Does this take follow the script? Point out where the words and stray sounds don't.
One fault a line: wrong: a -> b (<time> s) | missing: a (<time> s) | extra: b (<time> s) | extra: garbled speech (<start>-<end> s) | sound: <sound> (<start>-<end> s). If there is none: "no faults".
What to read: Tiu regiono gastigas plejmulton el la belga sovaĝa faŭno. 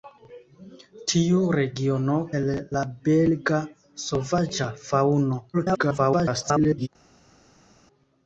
missing: gastigas plejmulton (2.1 s)
extra: garbled speech (5.5-6.9 s)